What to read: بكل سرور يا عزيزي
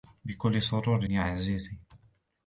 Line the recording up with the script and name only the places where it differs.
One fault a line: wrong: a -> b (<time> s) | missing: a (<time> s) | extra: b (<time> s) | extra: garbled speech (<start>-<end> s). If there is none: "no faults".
no faults